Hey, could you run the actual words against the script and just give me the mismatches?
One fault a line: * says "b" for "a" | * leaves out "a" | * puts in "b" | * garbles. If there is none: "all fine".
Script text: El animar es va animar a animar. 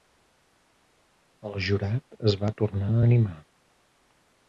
* says "jurat" for "animar"
* says "tornar" for "animar"